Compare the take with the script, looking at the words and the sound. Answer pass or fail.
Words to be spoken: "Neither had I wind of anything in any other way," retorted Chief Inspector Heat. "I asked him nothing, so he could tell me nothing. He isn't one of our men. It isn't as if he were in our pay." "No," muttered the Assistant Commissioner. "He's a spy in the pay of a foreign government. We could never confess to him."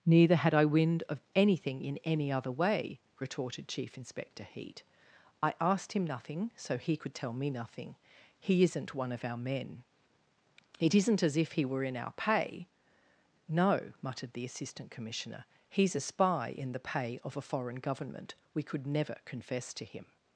pass